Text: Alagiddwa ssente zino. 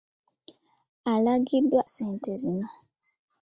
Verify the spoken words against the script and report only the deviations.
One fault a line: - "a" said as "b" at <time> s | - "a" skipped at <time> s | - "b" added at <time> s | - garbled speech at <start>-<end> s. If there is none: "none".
none